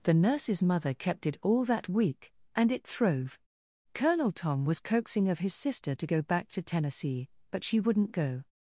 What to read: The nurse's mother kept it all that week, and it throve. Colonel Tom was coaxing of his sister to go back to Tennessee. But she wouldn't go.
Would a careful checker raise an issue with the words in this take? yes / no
no